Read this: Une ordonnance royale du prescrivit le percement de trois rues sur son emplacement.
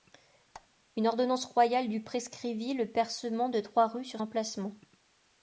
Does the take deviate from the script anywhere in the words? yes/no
yes